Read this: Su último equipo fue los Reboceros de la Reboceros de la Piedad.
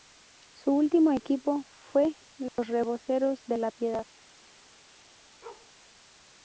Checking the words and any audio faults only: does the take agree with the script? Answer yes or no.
no